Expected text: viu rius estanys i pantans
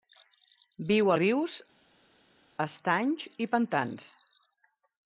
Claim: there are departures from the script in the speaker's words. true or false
false